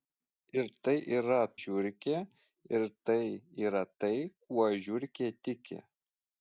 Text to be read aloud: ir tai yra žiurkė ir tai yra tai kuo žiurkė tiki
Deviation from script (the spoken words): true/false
false